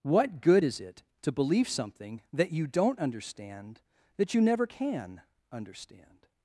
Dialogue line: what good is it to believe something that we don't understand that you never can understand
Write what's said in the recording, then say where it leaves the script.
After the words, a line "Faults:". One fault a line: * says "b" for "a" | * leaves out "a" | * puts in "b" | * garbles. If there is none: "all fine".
what good is it to believe something that you don't understand that you never can understand
Faults:
* says "you" for "we"